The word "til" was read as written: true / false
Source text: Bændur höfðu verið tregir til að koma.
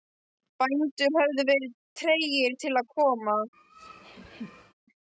true